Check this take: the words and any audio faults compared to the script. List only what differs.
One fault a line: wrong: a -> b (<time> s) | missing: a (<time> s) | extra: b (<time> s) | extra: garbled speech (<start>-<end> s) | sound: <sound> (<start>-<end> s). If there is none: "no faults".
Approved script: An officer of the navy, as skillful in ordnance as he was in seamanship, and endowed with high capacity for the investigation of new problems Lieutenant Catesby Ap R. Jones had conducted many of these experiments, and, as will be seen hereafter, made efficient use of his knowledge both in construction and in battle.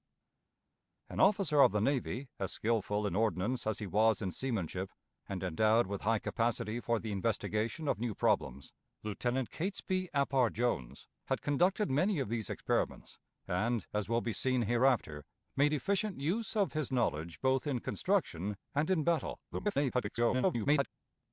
extra: garbled speech (19.5-20.9 s)